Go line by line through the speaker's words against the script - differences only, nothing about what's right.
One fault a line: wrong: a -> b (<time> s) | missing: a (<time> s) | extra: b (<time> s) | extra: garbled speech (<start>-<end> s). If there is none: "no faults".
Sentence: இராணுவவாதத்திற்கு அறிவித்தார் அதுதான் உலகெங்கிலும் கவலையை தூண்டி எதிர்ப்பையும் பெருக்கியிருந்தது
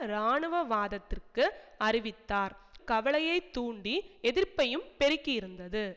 missing: அதுதான் உலகெங்கிலும் (2.5 s)